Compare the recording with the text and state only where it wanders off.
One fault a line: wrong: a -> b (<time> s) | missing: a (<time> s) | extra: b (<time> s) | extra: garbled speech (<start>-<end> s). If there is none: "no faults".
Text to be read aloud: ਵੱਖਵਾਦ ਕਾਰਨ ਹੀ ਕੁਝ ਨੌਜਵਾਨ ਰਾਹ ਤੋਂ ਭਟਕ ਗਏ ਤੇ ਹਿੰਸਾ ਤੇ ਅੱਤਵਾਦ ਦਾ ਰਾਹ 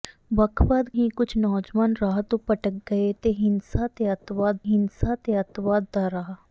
missing: ਕਾਰਨ (0.9 s)
extra: ਹਿੰਸਾ ਤੇ ਅੱਤਵਾਦ (4.6 s)